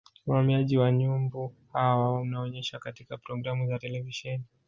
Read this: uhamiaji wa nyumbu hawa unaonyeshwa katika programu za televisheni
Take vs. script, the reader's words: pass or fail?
pass